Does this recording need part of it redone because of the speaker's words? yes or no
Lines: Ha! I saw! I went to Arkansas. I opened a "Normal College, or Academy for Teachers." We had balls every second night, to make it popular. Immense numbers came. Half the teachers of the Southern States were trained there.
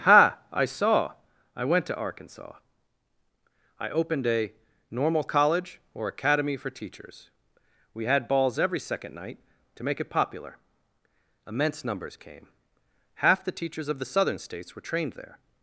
no